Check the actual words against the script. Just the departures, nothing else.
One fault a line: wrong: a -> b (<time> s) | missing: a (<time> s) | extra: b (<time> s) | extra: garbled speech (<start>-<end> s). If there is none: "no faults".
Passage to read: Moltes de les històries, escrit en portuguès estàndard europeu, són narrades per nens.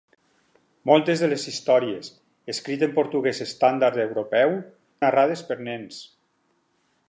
missing: són (4.6 s)